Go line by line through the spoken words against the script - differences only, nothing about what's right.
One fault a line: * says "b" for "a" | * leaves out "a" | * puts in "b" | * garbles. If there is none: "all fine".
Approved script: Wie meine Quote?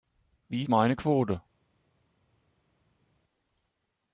all fine